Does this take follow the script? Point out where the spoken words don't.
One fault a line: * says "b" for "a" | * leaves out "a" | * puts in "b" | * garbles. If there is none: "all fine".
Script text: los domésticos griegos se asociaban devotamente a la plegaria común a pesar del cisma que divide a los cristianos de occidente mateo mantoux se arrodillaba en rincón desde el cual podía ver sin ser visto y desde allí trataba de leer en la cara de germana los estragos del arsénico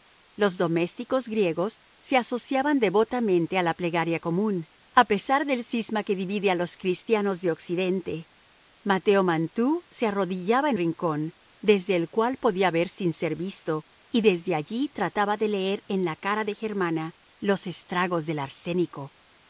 all fine